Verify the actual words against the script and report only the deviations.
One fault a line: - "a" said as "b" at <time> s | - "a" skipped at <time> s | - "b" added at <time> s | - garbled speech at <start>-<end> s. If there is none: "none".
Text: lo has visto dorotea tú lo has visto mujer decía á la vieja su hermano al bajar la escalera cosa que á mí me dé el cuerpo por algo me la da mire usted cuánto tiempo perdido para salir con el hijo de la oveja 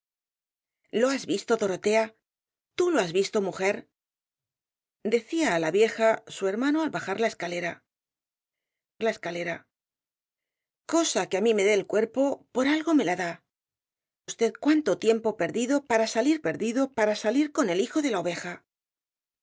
- "la escalera" added at 9.0 s
- "mire" skipped at 13.3 s
- "perdido para salir" added at 16.5 s